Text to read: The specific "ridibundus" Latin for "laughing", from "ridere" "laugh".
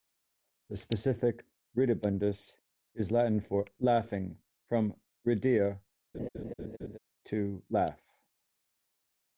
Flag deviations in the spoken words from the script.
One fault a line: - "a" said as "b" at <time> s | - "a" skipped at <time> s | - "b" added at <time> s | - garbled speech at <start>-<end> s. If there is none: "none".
- "is" added at 3.0 s
- "to" added at 7.2 s